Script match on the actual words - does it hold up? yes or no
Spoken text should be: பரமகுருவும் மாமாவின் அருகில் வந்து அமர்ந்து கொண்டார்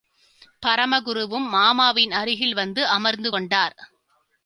yes